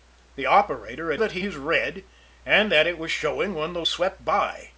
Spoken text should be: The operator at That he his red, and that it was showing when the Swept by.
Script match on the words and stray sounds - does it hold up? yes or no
yes